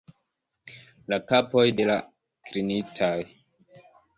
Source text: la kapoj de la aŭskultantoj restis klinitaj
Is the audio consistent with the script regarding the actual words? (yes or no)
no